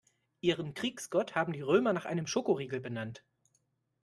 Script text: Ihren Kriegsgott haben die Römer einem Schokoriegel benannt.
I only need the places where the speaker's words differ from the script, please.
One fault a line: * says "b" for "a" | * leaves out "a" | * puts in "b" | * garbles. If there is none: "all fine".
* puts in "nach"